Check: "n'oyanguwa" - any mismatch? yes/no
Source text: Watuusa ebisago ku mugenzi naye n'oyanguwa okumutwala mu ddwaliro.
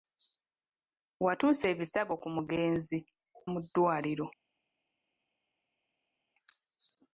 yes